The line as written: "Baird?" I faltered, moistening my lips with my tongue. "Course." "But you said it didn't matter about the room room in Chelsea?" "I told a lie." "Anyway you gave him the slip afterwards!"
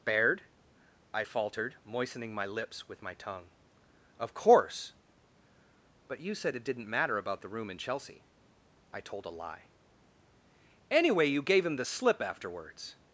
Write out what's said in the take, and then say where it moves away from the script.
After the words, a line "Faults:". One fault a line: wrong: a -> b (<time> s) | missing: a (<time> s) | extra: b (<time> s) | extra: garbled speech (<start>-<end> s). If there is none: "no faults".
"Baird?" I faltered, moistening my lips with my tongue. "Of course." "But you said it didn't matter about the room in Chelsea?" "I told a lie." "Anyway you gave him the slip afterwards!"
Faults:
extra: Of (4.2 s)
missing: room (7.7 s)